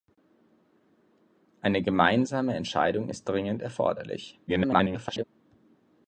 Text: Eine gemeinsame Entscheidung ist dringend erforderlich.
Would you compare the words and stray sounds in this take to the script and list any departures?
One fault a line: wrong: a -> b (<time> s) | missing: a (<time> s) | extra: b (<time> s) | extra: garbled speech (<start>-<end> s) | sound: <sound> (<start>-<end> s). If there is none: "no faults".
extra: garbled speech (4.5-5.2 s)